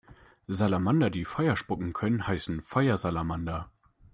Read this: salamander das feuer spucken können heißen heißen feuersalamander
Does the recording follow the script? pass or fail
fail